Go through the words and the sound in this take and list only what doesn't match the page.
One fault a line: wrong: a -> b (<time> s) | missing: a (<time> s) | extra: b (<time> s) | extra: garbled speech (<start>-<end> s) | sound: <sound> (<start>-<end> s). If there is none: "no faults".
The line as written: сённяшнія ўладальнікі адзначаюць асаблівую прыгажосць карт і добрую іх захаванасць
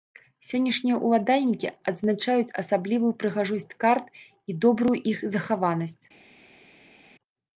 no faults